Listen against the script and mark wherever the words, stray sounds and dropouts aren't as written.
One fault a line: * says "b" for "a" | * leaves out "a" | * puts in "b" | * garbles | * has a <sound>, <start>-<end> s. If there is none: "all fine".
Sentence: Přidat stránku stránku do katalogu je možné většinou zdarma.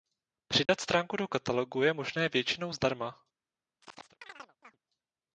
* has a dropout, 0.7-0.7 s
* leaves out "stránku"
* has a chirp, 3.8-4.8 s